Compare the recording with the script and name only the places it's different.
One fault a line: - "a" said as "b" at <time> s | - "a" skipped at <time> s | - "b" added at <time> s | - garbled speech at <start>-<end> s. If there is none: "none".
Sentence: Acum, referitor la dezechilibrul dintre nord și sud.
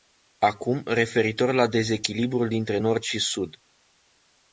none